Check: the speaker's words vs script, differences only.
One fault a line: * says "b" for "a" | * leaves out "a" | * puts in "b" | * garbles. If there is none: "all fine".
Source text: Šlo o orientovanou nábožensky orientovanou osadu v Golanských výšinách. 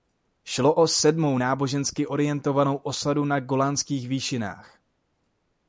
* says "sedmou" for "orientovanou"
* says "na" for "v"